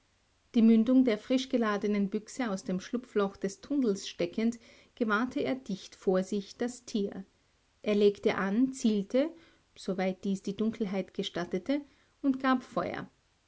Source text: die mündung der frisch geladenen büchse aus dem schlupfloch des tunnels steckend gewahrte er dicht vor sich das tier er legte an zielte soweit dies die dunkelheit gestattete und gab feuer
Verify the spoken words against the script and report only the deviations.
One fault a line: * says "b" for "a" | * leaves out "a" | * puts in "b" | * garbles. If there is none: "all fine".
all fine